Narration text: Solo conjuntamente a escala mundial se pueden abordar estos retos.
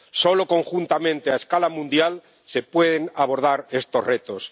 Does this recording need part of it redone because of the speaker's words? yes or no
no